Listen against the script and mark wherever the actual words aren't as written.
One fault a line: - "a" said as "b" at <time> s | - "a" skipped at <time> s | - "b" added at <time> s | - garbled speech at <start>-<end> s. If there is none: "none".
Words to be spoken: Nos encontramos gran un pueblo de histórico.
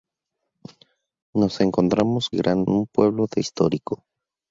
none